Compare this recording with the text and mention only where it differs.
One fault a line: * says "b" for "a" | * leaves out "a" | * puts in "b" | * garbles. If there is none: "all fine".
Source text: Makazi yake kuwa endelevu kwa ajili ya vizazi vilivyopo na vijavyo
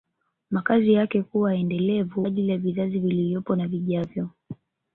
* leaves out "kwa"